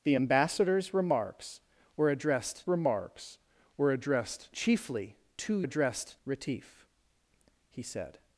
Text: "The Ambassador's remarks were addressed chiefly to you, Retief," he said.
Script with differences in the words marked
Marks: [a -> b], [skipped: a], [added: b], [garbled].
"The Ambassador's remarks were addressed [added: remarks were addressed] chiefly to [you, -> addressed] Retief," he said.